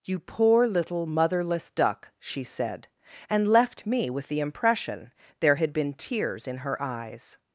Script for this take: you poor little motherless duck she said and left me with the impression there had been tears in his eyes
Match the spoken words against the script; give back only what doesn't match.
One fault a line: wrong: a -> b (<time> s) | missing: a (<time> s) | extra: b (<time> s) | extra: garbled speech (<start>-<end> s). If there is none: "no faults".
wrong: his -> her (6.6 s)